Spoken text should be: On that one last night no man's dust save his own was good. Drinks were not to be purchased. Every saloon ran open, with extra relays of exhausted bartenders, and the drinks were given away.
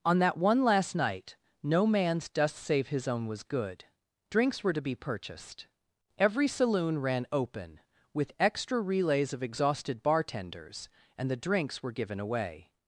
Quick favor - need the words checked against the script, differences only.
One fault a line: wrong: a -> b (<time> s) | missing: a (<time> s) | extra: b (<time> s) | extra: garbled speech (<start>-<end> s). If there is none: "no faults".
missing: not (4.7 s)